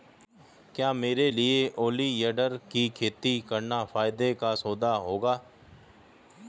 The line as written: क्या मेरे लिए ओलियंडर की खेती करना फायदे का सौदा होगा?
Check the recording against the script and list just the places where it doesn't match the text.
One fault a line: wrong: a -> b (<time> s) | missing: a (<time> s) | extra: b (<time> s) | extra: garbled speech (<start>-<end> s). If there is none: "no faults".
no faults